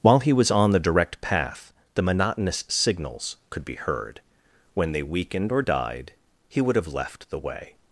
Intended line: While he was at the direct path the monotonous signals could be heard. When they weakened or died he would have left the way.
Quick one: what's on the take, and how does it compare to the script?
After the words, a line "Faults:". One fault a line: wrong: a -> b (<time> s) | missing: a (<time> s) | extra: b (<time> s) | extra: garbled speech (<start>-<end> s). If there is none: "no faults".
While he was on the direct path the monotonous signals could be heard. When they weakened or died he would have left the way.
Faults:
wrong: at -> on (0.5 s)